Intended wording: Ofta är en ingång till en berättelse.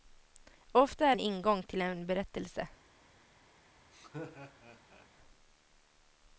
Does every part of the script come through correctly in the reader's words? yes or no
yes